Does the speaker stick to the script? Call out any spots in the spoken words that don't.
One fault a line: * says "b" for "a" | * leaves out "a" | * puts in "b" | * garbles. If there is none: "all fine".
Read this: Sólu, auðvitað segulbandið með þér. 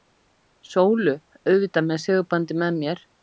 * puts in "með"
* says "mér" for "þér"